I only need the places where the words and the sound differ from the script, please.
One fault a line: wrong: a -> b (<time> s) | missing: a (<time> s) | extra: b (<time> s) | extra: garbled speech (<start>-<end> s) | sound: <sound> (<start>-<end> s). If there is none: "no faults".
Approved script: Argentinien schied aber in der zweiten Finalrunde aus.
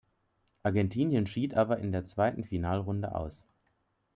no faults